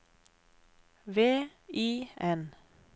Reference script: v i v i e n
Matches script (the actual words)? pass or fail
fail